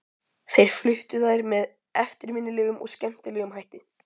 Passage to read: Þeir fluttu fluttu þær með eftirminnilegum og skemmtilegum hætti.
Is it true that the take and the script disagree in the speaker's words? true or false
true